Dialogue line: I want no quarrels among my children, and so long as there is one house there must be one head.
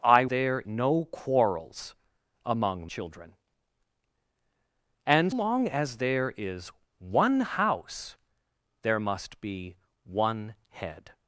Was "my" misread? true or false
true